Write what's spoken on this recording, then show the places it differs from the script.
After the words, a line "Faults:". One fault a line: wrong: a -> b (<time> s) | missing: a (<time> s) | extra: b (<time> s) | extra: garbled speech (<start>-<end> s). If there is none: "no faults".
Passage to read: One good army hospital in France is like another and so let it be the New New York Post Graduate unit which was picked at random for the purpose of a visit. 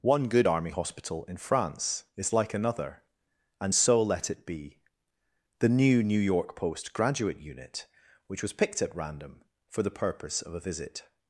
One good army hospital in France is like another and so let it be the New New York Post Graduate unit which was picked at random for the purpose of a visit.
Faults:
no faults